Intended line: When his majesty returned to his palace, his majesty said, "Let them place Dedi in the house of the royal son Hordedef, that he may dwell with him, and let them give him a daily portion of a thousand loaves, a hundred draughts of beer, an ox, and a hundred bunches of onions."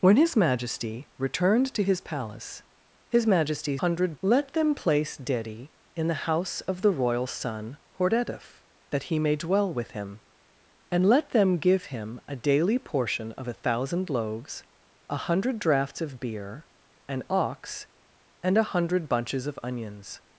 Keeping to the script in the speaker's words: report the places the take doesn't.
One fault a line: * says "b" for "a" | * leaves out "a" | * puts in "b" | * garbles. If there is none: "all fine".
* says "hundred" for "said"